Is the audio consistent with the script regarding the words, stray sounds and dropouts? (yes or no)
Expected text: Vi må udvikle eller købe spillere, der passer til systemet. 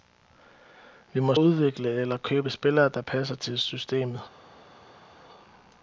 yes